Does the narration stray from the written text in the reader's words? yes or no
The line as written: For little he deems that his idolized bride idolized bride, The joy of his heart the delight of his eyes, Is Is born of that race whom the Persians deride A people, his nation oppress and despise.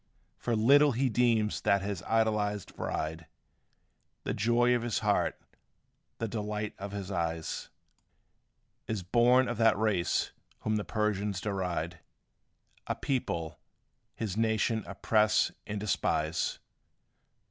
yes